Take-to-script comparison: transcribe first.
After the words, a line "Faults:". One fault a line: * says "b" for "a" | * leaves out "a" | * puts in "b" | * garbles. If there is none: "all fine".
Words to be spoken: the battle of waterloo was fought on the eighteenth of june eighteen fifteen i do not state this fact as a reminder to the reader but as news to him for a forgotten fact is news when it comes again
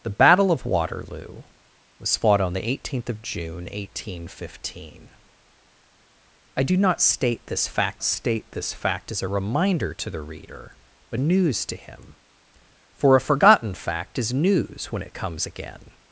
the battle of waterloo was fought on the eighteenth of june eighteen fifteen i do not state this fact state this fact as a reminder to the reader but news to him for a forgotten fact is news when it comes again
Faults:
* puts in "state this fact"
* leaves out "as"